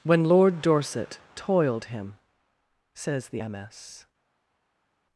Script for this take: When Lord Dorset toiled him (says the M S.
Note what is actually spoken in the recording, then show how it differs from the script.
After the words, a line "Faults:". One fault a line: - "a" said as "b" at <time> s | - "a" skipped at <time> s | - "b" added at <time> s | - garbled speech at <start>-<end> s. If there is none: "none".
When Lord Dorset toiled him (says the M S.
Faults:
none